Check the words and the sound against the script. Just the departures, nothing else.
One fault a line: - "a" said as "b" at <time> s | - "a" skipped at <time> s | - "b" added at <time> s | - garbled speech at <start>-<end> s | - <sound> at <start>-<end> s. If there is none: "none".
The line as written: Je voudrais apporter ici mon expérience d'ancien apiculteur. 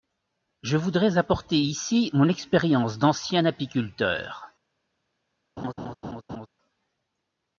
- laugh at 5.6-6.5 s